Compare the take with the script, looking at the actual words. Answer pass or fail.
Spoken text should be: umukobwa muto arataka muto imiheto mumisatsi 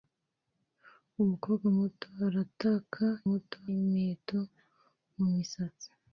pass